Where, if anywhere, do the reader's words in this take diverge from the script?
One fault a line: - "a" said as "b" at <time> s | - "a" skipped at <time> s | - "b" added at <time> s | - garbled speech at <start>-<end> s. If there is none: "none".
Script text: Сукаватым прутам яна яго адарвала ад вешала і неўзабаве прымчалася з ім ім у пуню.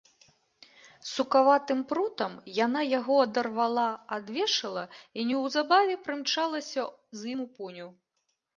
- "ім" skipped at 7.4 s